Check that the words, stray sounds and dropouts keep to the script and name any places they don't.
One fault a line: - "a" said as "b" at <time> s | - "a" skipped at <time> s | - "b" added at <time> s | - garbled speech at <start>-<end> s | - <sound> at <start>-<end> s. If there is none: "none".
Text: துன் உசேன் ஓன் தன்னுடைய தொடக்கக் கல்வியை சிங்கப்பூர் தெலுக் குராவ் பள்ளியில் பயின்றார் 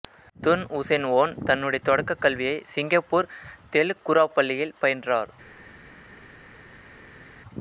none